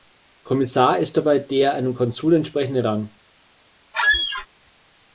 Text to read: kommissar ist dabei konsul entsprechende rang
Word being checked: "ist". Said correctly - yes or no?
yes